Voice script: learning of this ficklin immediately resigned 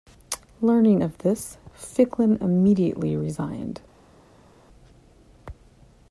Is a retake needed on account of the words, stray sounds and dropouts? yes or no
no